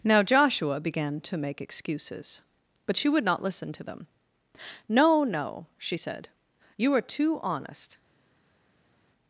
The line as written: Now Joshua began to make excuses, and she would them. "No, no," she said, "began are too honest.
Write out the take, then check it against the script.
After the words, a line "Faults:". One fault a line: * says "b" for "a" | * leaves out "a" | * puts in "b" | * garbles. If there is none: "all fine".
Now Joshua began to make excuses, but she would not listen to them. "No, no," she said, "you are too honest.
Faults:
* says "but" for "and"
* puts in "not listen to"
* says "you" for "began"